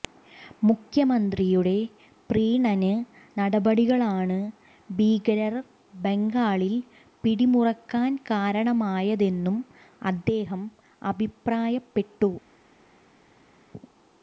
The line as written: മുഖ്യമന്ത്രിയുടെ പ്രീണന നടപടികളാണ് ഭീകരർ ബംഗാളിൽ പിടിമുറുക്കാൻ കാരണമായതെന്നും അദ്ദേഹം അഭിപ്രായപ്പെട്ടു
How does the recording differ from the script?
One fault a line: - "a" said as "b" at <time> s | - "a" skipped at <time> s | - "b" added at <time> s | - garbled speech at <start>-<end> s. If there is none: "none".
none